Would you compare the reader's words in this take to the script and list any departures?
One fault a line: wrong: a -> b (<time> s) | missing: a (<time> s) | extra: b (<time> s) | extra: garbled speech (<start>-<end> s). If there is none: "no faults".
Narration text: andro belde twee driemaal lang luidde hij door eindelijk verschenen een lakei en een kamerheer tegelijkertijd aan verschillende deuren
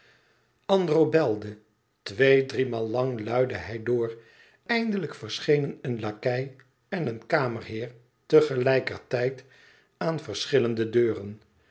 no faults